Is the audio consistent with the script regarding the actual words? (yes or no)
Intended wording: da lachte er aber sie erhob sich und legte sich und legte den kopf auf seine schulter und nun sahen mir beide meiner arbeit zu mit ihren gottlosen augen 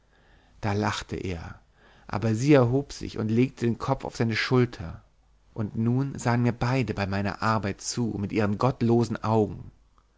no